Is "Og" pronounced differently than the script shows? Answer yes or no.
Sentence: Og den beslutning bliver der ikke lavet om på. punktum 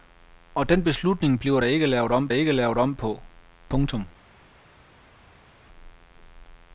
no